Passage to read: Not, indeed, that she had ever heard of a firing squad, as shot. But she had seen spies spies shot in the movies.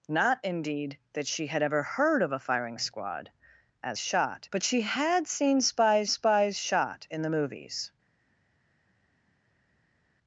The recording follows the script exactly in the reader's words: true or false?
true